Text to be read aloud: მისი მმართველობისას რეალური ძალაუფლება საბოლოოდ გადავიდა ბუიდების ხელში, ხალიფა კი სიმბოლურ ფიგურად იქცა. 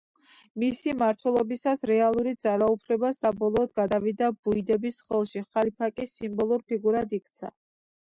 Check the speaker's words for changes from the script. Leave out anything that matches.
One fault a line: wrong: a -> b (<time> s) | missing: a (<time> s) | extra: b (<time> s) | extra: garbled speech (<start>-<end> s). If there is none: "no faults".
no faults